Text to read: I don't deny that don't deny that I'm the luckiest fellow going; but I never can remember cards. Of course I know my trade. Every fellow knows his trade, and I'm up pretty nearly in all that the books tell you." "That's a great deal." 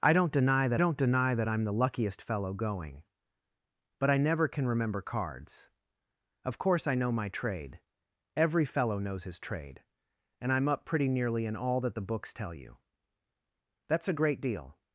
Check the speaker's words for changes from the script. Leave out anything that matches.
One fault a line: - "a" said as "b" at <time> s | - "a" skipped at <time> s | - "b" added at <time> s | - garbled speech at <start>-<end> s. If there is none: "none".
none